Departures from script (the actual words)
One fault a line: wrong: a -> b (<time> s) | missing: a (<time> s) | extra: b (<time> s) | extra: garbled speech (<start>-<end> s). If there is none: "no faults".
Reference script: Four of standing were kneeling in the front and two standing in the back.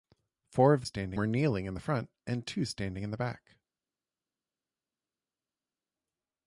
no faults